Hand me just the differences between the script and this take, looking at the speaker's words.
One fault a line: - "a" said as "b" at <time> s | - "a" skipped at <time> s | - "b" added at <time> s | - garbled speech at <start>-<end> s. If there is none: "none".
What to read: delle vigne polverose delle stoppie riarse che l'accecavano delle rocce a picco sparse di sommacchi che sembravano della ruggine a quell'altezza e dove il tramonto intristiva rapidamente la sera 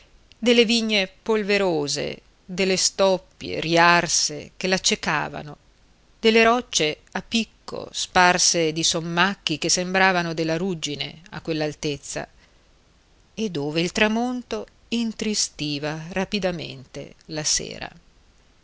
none